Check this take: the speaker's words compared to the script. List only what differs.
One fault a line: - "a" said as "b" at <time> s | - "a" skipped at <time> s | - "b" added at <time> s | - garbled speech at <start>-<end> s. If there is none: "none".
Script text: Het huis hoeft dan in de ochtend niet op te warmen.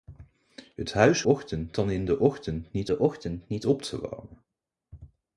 - "hoeft" said as "ochtend" at 1.2 s
- "de ochtend niet" added at 2.9 s